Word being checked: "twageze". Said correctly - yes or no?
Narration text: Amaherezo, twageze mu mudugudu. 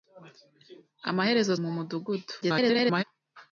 no